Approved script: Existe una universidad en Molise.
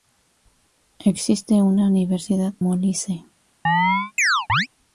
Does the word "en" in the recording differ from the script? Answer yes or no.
yes